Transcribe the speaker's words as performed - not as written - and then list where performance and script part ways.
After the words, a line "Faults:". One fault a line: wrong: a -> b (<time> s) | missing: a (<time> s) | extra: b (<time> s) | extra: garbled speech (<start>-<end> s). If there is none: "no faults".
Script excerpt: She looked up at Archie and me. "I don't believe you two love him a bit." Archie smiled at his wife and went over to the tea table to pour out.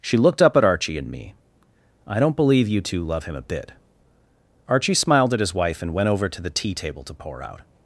She looked up at Archie and me. "I don't believe you two love him a bit." Archie smiled at his wife and went over to the tea table to pour out.
Faults:
no faults